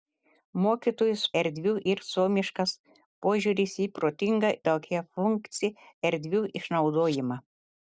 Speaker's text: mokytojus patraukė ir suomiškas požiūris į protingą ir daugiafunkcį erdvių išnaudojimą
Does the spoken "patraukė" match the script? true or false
false